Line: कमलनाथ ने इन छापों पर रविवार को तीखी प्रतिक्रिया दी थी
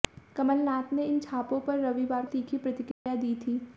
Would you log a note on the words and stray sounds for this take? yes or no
yes